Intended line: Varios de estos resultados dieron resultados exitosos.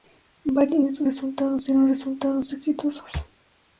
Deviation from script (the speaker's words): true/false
false